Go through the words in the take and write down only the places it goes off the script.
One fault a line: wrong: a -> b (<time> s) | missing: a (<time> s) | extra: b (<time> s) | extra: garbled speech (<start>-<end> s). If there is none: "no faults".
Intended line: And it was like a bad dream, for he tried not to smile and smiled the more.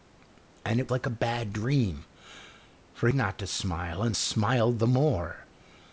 missing: was (0.9 s)
missing: he tried (3.1 s)